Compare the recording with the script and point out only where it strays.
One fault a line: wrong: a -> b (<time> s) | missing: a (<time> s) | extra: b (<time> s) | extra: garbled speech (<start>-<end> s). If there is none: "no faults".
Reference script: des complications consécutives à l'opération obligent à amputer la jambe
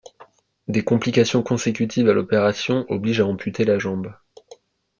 no faults